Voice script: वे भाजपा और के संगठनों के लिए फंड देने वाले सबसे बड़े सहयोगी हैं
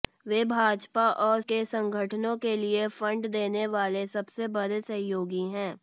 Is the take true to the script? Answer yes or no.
yes